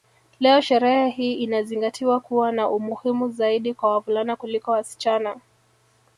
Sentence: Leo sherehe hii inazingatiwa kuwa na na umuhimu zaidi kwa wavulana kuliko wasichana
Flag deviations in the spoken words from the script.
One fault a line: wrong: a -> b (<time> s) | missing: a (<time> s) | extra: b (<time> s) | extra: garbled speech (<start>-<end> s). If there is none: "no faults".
missing: na (2.7 s)